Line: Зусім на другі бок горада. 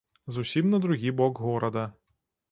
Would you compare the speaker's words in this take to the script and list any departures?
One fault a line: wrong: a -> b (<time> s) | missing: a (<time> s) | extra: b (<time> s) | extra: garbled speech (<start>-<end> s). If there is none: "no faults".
no faults